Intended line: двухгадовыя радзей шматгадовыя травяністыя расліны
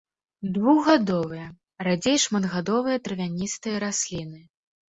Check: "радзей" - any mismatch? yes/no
no